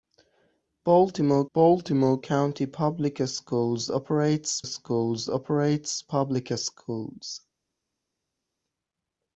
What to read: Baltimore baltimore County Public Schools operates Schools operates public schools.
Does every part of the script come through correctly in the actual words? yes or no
yes